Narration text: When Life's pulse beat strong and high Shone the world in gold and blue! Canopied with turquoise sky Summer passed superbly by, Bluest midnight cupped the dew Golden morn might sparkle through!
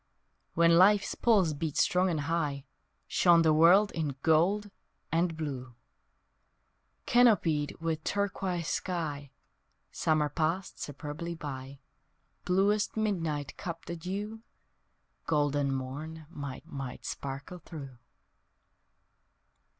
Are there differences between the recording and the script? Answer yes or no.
yes